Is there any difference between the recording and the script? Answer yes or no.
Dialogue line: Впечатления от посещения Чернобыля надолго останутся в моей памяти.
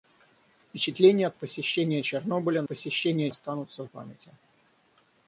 yes